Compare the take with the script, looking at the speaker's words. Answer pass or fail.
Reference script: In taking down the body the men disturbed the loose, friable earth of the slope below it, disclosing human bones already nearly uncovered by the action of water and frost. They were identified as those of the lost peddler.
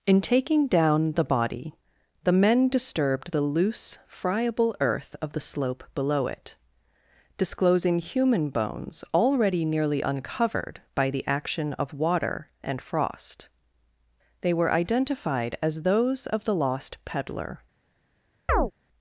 pass